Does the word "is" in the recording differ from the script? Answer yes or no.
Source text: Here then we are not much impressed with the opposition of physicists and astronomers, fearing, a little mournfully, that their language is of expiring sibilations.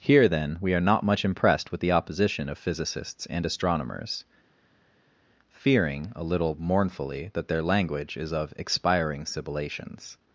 no